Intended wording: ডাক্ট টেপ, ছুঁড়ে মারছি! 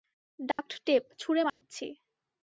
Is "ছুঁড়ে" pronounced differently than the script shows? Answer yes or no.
no